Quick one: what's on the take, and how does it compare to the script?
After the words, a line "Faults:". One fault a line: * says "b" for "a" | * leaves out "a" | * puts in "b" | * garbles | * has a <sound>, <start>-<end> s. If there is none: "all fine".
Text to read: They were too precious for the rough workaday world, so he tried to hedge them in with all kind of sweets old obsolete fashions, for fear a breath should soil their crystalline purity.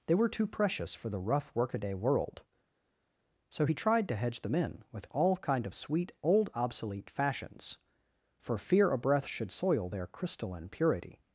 They were too precious for the rough workaday world, so he tried to hedge them in with all kind of sweet old obsolete fashions, for fear a breath should soil their crystalline purity.
Faults:
* says "sweet" for "sweets"